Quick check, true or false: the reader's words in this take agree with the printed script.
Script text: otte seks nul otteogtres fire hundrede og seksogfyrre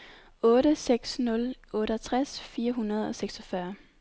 true